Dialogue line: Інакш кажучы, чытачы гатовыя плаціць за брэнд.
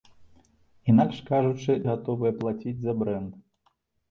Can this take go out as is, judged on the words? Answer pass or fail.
fail